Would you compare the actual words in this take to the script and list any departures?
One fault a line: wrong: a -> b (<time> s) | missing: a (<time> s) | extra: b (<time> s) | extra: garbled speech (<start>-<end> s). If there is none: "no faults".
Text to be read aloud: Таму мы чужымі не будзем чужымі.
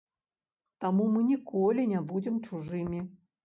wrong: чужымі -> ніколі (1.3 s)